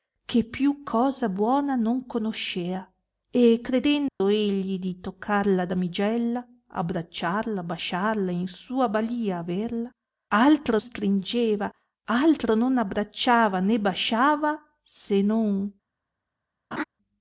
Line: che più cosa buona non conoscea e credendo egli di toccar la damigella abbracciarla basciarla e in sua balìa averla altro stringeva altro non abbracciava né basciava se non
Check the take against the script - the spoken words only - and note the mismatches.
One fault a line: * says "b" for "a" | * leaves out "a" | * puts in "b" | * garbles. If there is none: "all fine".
all fine